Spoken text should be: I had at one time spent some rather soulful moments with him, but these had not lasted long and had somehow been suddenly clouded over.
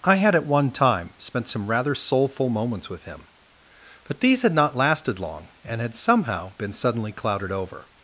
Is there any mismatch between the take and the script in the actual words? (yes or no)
no